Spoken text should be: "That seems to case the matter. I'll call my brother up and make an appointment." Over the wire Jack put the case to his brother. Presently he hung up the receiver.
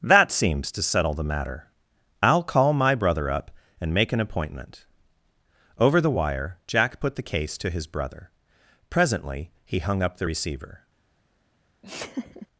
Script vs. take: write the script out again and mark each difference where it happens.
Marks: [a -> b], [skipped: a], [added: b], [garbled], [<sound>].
"That seems to [case -> settle] the matter. I'll call my brother up and make an appointment." Over the wire Jack put the case to his brother. Presently he hung up the receiver. [laugh]